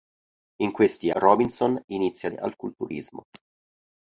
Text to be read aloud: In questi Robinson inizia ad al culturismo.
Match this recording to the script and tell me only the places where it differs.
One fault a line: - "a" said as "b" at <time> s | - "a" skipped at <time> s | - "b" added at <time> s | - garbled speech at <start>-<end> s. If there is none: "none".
none